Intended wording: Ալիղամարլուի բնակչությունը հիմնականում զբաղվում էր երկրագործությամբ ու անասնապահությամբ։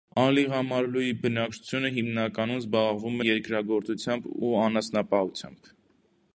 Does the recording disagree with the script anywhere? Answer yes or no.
yes